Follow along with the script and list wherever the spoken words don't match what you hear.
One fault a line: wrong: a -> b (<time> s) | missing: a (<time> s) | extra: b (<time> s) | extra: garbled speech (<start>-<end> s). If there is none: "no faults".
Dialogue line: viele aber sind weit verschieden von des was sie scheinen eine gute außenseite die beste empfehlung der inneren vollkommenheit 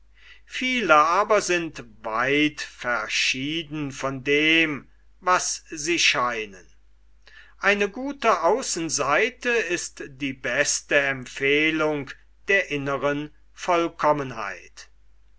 wrong: des -> dem (4.2 s)
extra: ist (9.5 s)